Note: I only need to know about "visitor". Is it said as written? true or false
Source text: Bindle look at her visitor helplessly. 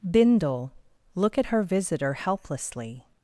true